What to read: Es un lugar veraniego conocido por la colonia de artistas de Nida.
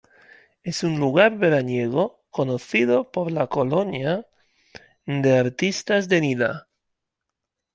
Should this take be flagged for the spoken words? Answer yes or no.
no